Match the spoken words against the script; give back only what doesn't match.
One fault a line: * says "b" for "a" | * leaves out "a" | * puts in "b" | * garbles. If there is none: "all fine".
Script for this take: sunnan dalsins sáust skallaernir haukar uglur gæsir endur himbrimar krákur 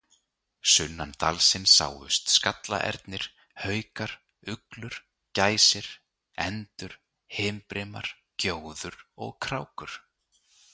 * puts in "gjóður og"